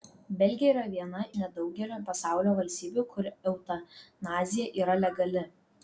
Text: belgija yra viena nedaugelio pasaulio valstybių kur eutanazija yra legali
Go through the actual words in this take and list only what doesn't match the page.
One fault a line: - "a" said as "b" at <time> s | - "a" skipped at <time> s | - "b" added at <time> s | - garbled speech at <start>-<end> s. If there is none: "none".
none